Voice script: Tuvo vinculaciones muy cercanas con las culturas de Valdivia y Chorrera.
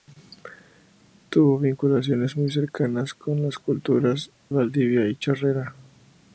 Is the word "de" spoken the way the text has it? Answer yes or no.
no